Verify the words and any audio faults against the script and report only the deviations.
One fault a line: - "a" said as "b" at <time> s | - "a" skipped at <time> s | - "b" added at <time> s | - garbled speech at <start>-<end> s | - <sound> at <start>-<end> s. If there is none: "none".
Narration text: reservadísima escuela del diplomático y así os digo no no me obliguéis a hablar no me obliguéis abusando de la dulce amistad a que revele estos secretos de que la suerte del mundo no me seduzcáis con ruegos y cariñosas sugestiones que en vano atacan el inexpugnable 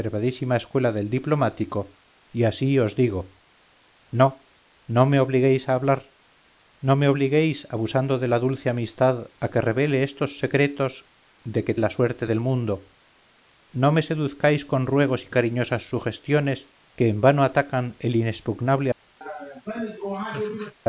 - laugh at 19.2-20.7 s